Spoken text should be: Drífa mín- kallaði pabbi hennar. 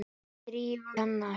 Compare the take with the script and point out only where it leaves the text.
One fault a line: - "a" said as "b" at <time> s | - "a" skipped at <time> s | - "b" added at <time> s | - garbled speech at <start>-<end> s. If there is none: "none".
- "mín kallaði pabbi" skipped at 0.9 s